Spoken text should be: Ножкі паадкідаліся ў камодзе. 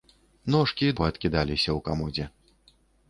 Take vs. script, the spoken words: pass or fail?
pass